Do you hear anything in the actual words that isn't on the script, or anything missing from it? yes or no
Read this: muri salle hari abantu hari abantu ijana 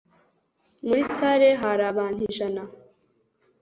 yes